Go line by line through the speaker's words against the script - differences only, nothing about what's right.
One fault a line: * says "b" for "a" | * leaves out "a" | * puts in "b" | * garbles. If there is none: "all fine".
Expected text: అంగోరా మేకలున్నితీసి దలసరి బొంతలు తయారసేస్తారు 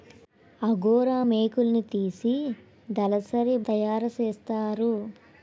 * leaves out "బొంతలు"